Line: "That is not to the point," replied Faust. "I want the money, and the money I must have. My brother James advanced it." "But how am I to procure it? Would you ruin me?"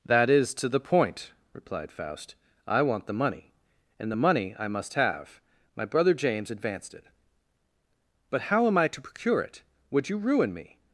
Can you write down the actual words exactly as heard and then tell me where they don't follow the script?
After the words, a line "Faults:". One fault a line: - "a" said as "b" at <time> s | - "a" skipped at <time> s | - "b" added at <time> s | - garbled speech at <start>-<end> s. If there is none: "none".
"That is to the point," replied Faust. "I want the money, and the money I must have. My brother James advanced it." "But how am I to procure it? Would you ruin me?"
Faults:
- "not" skipped at 0.5 s